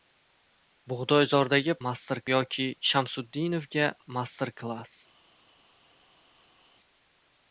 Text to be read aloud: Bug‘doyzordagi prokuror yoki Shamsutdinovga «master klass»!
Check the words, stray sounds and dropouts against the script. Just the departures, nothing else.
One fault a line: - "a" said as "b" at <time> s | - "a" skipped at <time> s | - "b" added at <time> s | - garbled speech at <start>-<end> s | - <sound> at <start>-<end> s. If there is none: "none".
- "prokuror" said as "master" at 1.9 s